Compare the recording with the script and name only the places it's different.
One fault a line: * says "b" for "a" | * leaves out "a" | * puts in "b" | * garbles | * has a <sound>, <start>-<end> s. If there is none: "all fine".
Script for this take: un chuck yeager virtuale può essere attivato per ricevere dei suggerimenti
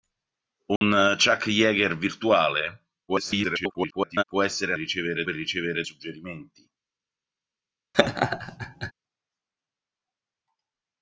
* has a dropout, 0.8-0.8 s
* garbles
* says "ricevere" for "attivato"
* leaves out "dei"
* has a laugh, 7.9-8.9 s